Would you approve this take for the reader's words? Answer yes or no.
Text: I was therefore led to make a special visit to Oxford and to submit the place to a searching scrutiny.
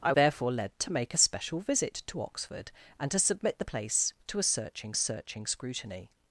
no